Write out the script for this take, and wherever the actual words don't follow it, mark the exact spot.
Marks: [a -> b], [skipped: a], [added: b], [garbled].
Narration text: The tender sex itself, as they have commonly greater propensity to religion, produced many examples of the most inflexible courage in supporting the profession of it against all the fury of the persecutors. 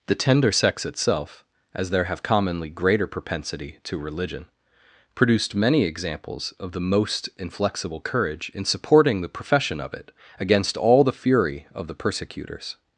The tender sex itself, as [they -> there] have commonly greater propensity to religion, produced many examples of the most inflexible courage in supporting the profession of it against all the fury of the persecutors.